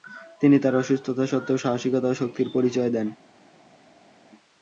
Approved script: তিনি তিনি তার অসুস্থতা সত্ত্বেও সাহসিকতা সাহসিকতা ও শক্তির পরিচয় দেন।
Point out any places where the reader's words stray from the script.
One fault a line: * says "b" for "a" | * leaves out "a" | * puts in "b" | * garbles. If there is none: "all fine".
* leaves out "তিনি"
* leaves out "সাহসিকতা"